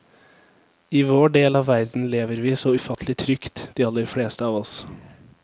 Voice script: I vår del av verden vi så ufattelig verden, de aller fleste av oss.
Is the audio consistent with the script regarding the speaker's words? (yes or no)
no